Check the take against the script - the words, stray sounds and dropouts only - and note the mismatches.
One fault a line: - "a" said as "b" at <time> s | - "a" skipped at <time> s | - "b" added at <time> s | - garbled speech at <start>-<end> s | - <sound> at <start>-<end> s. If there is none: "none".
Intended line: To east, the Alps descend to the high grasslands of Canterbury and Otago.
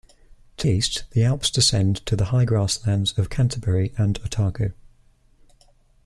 none